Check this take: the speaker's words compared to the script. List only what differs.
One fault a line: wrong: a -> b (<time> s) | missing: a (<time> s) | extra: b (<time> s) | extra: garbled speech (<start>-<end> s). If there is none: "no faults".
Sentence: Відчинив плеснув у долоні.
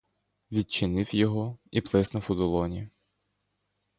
extra: його і (1.1 s)